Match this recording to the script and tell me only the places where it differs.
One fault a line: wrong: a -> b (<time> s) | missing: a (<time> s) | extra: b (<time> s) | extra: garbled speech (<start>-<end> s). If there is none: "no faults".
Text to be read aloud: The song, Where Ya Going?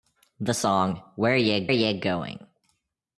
extra: Ya (1.7 s)